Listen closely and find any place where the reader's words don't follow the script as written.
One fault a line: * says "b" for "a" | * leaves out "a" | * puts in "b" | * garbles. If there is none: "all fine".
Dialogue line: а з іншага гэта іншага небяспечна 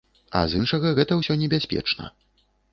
* says "ўсё" for "іншага"